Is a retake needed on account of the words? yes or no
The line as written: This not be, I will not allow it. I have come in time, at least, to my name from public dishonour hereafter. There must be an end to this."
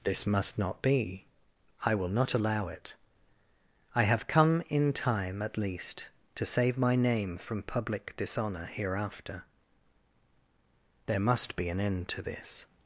yes